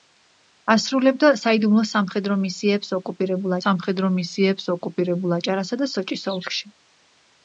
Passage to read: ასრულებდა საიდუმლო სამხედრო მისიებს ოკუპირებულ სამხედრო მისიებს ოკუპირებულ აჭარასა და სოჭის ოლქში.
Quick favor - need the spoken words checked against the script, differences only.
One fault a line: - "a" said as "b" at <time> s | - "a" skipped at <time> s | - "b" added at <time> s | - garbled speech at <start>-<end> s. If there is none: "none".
none